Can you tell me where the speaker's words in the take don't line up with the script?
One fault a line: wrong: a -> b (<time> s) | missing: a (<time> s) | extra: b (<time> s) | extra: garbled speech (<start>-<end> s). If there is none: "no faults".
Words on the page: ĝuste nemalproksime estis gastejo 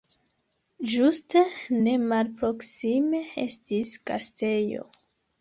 no faults